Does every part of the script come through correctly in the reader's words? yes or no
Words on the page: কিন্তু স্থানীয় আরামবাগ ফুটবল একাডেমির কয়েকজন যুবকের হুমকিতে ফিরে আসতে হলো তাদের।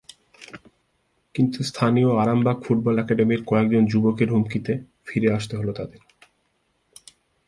yes